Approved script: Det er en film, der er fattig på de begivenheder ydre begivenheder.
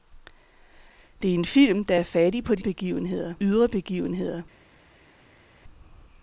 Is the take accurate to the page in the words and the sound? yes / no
yes